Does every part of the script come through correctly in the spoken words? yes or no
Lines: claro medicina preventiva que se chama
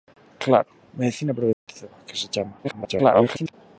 no